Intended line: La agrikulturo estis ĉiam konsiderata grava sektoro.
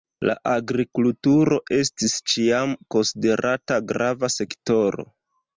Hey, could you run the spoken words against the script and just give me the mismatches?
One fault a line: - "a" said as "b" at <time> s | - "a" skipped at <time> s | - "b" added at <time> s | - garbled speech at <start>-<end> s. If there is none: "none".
none